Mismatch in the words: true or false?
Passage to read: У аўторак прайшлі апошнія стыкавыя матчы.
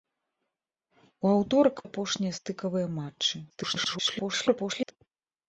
true